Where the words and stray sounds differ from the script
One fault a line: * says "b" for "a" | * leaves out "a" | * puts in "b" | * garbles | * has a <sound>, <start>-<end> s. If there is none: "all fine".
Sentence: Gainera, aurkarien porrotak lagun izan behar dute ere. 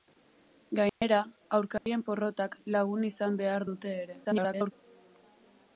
* has a dropout, 0.9-1.0 s
* has a dropout, 1.8-1.9 s
* garbles